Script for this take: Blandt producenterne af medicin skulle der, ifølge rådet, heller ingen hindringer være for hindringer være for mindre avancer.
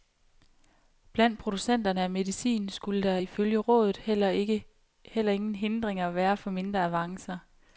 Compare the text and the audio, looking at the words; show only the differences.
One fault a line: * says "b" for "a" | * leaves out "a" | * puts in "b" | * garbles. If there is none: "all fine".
* leaves out "hindringer være for"